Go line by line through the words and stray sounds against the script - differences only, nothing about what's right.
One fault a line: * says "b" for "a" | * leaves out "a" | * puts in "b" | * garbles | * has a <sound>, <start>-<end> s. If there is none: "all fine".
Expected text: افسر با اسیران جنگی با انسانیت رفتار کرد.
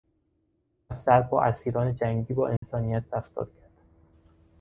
* has a dropout, 2.6-2.6 s